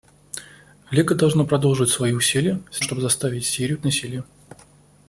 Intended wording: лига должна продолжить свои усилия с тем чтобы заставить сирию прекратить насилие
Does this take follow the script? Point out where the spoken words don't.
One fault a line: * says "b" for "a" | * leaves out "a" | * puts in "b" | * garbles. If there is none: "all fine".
* leaves out "тем"
* leaves out "прекратить"